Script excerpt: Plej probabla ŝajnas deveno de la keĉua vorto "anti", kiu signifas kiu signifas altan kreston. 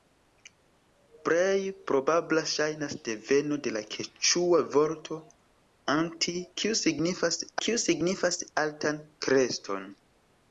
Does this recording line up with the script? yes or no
yes